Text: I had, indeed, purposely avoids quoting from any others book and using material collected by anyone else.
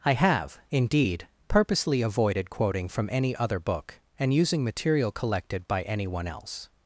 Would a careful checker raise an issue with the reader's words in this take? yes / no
yes